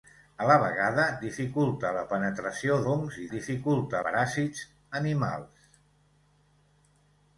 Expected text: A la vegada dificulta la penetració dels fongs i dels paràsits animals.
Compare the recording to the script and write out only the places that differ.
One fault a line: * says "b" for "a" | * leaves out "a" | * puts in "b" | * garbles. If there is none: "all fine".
* leaves out "dels"
* says "dificulta" for "dels"